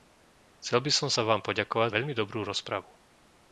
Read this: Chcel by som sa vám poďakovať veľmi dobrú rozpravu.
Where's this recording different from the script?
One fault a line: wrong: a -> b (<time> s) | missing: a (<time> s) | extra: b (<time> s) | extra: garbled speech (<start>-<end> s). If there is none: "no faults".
no faults